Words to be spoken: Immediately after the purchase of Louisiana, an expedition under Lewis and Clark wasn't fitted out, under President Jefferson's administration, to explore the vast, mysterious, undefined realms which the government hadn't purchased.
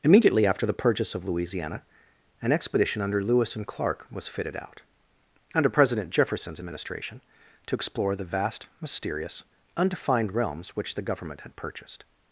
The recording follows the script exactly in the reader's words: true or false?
false